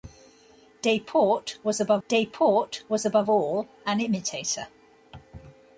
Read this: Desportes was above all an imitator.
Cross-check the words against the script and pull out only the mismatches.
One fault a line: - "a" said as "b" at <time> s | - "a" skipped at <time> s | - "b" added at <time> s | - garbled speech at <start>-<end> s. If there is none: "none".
- "desportes was above" added at 2.1 s